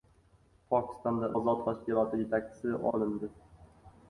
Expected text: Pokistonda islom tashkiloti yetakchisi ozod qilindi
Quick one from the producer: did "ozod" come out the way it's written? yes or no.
no